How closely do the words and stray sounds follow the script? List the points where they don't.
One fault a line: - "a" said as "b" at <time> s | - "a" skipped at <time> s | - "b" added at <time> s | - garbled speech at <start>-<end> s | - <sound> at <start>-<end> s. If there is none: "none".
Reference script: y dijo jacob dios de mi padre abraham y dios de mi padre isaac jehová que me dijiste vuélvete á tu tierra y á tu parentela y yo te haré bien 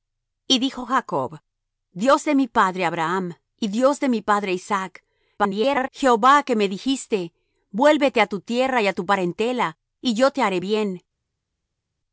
- garbled speech at 5.4-5.9 s